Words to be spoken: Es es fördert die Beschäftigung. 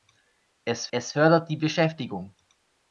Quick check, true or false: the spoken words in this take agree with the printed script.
true